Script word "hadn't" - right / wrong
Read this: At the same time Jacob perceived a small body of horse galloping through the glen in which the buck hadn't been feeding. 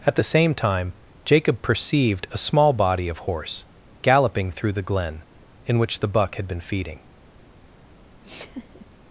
wrong